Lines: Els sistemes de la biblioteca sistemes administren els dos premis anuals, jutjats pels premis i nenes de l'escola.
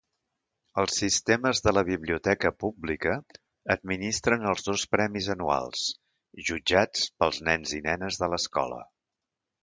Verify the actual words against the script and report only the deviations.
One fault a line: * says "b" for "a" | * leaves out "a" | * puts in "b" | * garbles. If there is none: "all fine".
* says "pública" for "sistemes"
* says "nens" for "premis"